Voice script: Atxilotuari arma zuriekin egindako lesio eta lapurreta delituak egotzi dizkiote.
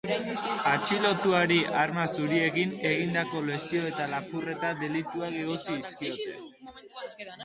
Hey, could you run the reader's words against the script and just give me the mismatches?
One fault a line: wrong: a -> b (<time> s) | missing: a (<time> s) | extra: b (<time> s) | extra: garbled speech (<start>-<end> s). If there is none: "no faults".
no faults